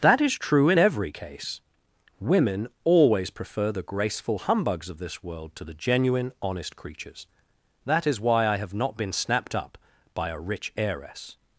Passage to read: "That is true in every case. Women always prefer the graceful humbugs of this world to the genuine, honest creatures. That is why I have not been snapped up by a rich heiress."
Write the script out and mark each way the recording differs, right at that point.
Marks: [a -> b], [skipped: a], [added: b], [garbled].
"That is true in every case. Women always prefer the graceful humbugs of this world to the genuine, honest creatures. That is why I have not been snapped up by a rich heiress."